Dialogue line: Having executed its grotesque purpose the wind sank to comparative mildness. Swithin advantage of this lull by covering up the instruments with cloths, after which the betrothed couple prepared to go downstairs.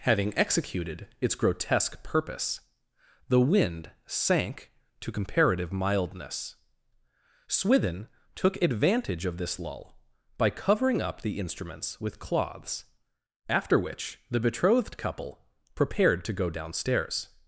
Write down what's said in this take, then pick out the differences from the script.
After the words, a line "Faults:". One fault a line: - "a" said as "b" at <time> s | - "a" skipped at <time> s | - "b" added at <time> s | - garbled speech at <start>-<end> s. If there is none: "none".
Having executed its grotesque purpose the wind sank to comparative mildness. Swithin took advantage of this lull by covering up the instruments with cloths, after which the betrothed couple prepared to go downstairs.
Faults:
- "took" added at 8.3 s